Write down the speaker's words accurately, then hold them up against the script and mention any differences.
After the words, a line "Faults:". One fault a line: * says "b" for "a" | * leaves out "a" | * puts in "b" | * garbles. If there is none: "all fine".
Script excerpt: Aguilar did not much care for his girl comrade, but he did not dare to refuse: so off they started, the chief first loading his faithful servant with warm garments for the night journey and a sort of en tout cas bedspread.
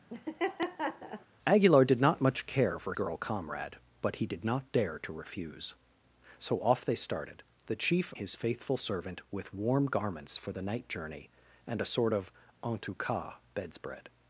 Aguilar did not much care for girl comrade, but he did not dare to refuse: so off they started, the chief his faithful servant with warm garments for the night journey and a sort of en tout cas bedspread.
Faults:
* leaves out "his"
* leaves out "first loading"